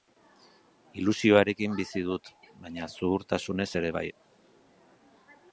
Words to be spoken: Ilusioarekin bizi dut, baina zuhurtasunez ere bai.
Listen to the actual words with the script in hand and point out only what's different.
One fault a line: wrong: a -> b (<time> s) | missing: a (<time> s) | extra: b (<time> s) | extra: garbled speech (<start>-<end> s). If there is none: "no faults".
no faults